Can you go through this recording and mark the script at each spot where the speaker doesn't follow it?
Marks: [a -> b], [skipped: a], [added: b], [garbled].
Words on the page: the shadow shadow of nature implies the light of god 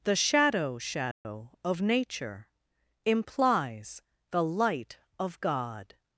the shadow shadow of nature implies the light of god